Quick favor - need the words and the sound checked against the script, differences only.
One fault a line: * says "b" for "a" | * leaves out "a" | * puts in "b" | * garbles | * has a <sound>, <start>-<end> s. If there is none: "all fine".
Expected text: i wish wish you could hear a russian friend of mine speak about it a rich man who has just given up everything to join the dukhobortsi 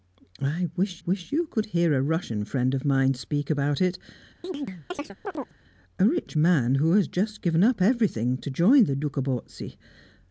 * has a chirp, 4.4-5.5 s